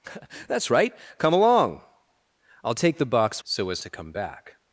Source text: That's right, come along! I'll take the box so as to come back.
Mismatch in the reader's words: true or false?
false